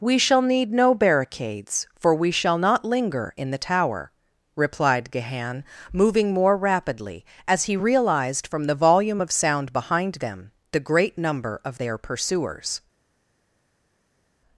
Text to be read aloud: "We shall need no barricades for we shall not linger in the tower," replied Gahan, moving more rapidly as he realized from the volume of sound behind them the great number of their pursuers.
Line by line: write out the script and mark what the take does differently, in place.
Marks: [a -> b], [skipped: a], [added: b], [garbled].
"We shall need no barricades for we shall not linger in the tower," replied Gahan, moving more rapidly as he realized from the volume of sound behind them the great number of their pursuers.